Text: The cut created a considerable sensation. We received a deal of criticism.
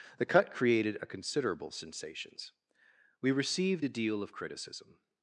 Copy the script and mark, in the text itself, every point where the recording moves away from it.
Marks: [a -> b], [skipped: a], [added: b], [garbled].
The cut created a considerable [sensation. -> sensations] We received a deal of criticism.